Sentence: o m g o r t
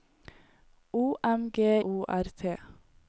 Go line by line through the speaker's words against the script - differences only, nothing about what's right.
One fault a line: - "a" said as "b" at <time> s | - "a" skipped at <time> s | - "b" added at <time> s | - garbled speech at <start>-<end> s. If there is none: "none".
none